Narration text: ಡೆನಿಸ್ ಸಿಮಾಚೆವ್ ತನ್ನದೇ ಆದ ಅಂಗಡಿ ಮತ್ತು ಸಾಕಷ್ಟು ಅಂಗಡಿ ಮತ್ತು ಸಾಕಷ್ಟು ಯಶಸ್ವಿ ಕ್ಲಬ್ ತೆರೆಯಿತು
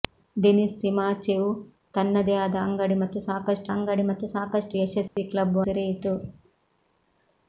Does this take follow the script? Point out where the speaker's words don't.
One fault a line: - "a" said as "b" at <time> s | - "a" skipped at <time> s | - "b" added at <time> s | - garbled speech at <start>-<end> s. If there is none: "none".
none